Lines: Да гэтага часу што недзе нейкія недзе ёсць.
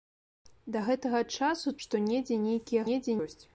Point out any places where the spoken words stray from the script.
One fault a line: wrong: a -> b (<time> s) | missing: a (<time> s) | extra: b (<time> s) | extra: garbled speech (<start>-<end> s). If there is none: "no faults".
no faults